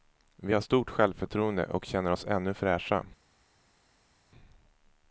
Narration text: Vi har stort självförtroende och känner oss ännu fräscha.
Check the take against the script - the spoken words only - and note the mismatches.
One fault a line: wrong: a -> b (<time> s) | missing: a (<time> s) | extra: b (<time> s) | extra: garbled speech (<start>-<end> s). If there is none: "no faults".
no faults